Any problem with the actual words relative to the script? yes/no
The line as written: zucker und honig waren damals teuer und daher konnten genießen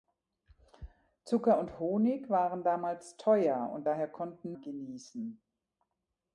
no